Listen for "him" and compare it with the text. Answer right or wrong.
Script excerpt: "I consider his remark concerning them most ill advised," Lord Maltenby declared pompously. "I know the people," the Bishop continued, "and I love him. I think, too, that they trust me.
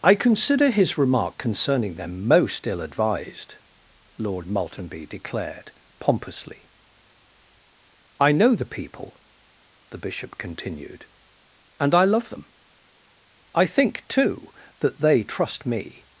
wrong